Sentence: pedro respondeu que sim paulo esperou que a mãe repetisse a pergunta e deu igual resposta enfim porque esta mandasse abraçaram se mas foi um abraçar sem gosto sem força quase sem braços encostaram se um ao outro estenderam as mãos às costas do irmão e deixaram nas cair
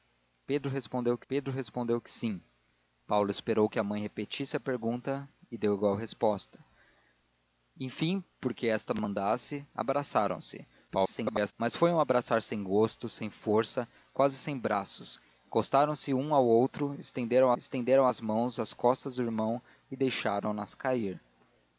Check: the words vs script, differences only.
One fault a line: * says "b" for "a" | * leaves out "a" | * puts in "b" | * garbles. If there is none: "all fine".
* puts in "pedro respondeu que"
* garbles
* puts in "estenderam"